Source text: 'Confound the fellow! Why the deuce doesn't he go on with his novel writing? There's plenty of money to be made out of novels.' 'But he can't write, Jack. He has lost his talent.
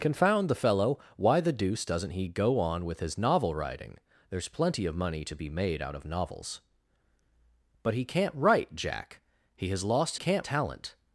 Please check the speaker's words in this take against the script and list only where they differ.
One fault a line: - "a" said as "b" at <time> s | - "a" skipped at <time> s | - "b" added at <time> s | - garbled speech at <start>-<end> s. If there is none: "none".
- "his" said as "can't" at 10.1 s